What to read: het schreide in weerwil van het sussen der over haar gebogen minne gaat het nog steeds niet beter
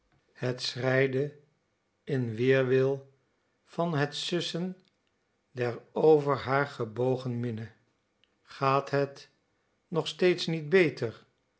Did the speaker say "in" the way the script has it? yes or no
yes